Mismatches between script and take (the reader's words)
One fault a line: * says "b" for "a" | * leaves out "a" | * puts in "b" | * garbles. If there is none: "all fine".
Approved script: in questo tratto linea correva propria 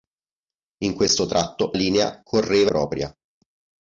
all fine